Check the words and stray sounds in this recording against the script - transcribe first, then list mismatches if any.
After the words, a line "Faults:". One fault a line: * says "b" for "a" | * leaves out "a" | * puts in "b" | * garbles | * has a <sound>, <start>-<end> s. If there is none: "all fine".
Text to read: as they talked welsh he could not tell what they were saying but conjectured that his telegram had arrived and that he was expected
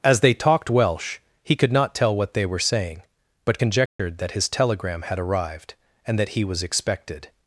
as they talked welsh he could not tell what they were saying but conjectured that his telegram had arrived and that he was expected
Faults:
* has a dropout, 3.9-4.0 s